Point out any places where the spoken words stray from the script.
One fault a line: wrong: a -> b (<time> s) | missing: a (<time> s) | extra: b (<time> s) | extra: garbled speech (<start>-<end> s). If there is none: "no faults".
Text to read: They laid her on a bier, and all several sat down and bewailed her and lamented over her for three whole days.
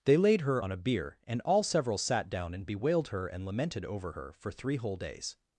no faults